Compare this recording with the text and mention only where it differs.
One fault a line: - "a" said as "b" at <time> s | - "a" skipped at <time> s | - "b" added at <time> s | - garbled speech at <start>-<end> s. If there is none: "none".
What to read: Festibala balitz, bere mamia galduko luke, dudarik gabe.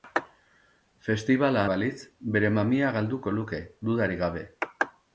none